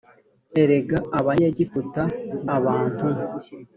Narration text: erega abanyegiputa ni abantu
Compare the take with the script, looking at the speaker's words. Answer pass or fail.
fail